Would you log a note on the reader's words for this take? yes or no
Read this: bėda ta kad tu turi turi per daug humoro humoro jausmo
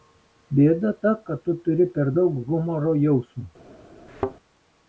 yes